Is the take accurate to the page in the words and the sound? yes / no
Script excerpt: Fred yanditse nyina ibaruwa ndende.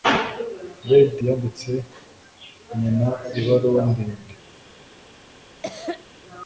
no